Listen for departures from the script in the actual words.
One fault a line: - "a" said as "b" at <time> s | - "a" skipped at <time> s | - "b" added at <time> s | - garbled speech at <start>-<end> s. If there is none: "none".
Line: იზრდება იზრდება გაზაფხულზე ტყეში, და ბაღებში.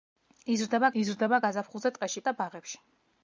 none